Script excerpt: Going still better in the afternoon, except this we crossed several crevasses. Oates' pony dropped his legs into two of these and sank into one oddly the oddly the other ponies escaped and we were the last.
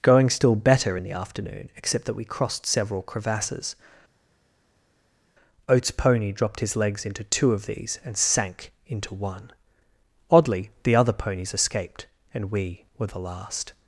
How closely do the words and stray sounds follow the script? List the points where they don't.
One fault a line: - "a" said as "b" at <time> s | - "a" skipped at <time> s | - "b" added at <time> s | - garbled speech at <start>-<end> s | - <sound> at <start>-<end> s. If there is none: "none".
- "this" said as "that" at 2.0 s
- "oddly the" skipped at 10.9 s